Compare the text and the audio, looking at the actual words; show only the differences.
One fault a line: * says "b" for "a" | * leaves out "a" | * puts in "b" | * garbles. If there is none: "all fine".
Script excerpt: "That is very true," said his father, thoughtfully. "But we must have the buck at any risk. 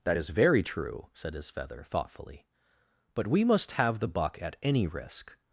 * says "feather" for "father"